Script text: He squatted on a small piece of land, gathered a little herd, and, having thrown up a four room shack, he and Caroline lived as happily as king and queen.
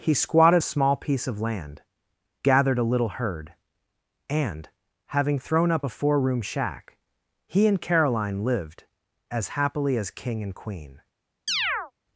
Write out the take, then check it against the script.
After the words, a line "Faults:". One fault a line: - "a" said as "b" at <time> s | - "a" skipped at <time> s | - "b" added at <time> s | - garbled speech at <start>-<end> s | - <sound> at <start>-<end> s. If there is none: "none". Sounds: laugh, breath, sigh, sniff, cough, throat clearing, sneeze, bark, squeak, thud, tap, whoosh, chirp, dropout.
He squatted a small piece of land, gathered a little herd, and, having thrown up a four room shack, he and Caroline lived as happily as king and queen.
Faults:
- "on" skipped at 0.6 s
- chirp at 11.5-11.9 s